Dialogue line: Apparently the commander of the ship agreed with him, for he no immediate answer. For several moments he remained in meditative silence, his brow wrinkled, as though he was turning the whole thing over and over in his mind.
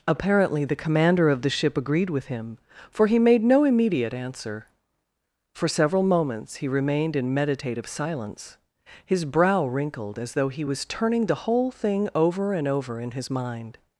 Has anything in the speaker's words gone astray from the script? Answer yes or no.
yes